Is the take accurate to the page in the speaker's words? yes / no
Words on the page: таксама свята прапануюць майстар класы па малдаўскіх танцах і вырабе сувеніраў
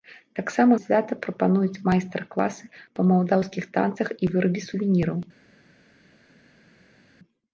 yes